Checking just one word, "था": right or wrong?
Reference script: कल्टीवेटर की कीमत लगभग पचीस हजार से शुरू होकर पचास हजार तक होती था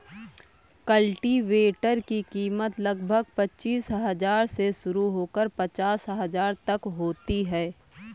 wrong